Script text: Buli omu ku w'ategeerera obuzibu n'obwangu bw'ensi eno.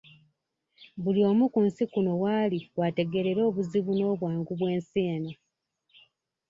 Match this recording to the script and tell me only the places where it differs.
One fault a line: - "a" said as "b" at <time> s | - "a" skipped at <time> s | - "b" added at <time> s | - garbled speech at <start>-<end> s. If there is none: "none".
- "nsi kuno w'ali" added at 1.7 s